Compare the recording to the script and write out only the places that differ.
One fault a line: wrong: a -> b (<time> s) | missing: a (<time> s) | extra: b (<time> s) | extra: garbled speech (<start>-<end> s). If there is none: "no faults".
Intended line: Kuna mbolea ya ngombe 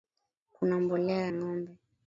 missing: ya (1.3 s)